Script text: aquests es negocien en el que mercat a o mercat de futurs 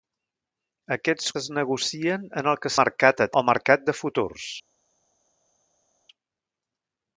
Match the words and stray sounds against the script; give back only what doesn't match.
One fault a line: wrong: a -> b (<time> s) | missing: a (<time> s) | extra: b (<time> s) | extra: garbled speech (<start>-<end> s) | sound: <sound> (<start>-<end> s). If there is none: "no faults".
no faults